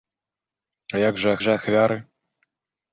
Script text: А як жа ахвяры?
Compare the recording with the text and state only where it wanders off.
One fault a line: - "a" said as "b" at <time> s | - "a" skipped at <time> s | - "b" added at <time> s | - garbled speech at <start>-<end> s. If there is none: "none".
- "жа" added at 1.5 s